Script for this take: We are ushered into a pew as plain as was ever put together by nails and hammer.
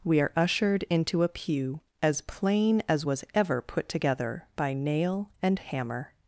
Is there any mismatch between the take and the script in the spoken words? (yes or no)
yes